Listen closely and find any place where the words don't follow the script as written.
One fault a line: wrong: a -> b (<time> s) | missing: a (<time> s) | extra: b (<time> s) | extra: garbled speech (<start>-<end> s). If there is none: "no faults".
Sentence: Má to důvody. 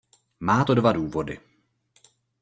extra: dva (0.7 s)